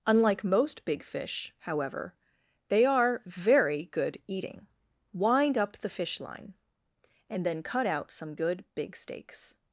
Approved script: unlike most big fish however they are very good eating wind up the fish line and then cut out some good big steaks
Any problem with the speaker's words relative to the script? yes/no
no